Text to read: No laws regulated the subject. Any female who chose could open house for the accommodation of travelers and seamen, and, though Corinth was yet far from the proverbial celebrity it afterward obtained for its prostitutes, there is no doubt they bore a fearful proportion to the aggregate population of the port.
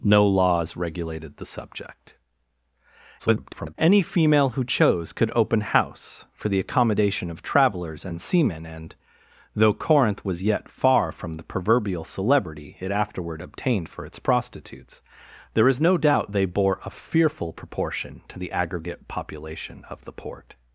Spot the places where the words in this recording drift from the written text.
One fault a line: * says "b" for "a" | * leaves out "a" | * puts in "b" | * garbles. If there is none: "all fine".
* garbles